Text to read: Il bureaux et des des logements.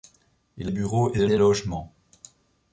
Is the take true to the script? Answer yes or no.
yes